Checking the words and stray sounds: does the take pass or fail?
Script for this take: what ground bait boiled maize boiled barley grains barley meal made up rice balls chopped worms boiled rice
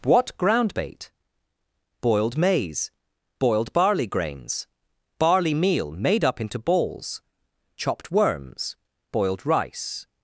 fail